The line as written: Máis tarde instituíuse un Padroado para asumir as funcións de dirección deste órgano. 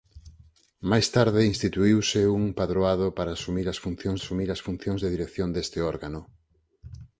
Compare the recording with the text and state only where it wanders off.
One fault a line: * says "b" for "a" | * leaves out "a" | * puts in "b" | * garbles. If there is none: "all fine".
* puts in "asumir as funcións"